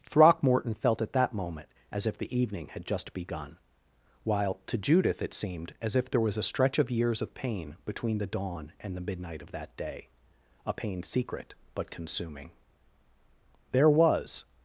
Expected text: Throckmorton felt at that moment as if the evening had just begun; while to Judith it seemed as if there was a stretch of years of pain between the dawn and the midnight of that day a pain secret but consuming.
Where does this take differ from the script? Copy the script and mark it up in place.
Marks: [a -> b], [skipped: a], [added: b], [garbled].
Throckmorton felt at that moment as if the evening had just begun; while to Judith it seemed as if there was a stretch of years of pain between the dawn and the midnight of that day a pain secret but consuming. [added: There was]